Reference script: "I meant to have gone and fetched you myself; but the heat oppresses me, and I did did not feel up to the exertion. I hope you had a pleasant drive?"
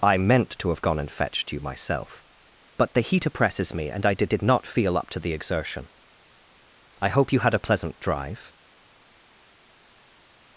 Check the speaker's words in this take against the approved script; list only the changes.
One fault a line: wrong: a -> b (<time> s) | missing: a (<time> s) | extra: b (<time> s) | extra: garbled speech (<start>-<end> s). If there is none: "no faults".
no faults